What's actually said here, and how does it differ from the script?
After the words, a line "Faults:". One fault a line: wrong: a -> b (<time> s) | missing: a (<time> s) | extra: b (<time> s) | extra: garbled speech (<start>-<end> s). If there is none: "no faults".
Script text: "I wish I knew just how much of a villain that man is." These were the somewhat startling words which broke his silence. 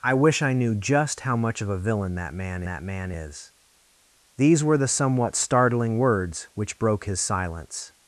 "I wish I knew just how much of a villain that man that man is." These were the somewhat startling words which broke his silence.
Faults:
extra: that man (2.6 s)